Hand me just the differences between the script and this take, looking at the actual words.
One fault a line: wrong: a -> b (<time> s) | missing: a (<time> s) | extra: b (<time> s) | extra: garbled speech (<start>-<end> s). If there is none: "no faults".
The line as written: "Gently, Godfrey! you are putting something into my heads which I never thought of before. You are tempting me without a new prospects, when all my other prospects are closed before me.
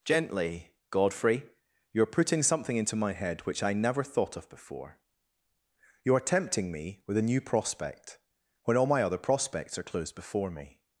wrong: heads -> head (3.1 s)
wrong: without -> with (7.0 s)
wrong: prospects -> prospect (7.4 s)